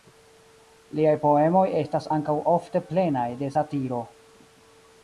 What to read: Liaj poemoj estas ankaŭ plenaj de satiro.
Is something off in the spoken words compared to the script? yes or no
yes